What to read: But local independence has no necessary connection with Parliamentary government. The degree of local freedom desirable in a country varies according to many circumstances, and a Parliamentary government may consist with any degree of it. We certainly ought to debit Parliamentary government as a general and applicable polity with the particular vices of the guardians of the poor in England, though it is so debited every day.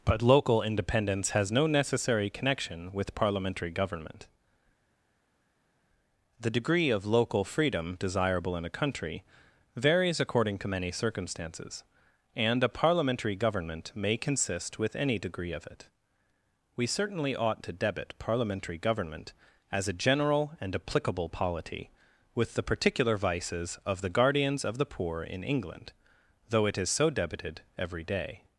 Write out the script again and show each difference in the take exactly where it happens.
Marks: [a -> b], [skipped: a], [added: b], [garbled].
But local independence has no necessary connection with Parliamentary government. The degree of local freedom desirable in a country varies according to many circumstances, and a Parliamentary government may consist with any degree of it. We certainly ought to debit Parliamentary government as a general and applicable polity with the particular vices of the guardians of the poor in England, though it is so debited every day.